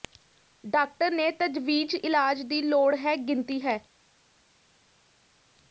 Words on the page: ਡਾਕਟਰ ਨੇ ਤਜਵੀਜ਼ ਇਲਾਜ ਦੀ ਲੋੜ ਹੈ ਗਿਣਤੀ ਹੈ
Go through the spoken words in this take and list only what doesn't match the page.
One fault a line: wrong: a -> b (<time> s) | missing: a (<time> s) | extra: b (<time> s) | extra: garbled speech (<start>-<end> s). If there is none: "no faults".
no faults